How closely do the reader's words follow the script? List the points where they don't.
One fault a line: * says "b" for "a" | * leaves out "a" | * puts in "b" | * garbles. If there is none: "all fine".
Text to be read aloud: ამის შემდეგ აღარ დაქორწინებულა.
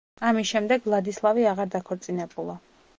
* puts in "ვლადისლავი"